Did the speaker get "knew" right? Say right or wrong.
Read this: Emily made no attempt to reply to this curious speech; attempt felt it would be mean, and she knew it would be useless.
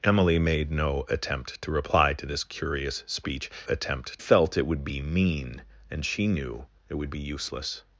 right